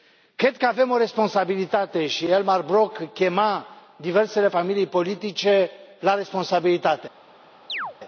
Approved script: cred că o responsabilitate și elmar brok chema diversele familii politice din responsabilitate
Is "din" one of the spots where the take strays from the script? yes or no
yes